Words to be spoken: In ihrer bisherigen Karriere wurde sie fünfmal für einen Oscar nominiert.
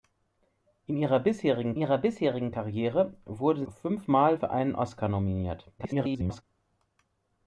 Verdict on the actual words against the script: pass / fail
fail